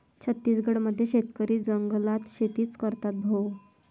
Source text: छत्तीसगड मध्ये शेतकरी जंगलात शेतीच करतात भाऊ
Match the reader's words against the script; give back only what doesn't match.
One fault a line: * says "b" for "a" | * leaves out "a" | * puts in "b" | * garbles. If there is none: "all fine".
all fine